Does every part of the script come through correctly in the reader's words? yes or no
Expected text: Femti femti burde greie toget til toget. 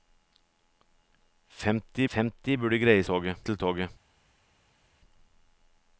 yes